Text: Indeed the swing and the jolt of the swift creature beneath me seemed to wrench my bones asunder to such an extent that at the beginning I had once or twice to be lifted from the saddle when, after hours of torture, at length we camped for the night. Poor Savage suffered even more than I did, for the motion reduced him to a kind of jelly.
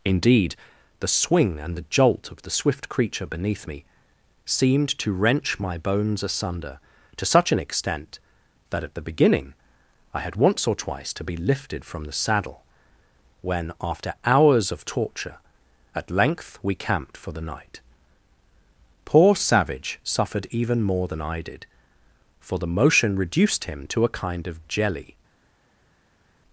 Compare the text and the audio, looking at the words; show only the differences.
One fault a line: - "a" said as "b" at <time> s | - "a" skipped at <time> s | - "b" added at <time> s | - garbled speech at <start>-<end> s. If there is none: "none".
none